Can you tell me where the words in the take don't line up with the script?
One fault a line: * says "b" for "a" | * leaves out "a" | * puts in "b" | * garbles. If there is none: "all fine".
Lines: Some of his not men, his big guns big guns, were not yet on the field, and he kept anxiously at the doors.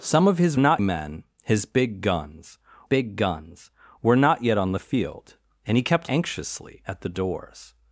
all fine